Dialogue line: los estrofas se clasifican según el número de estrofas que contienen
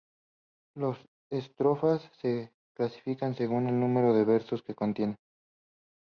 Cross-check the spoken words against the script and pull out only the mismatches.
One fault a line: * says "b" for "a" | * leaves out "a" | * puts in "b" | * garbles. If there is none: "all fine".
* says "las" for "los"
* says "versos" for "estrofas"